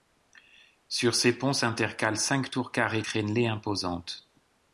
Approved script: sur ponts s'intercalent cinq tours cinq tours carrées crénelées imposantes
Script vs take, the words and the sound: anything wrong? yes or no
yes